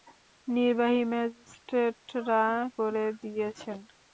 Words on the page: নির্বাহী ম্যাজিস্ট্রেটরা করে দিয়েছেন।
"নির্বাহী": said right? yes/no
yes